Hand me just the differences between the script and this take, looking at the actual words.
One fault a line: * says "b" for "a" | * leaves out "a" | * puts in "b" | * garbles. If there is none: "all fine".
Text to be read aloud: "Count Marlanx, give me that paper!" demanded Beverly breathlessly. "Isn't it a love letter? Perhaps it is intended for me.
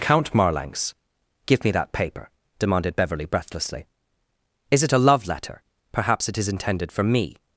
* says "Is" for "Isn't"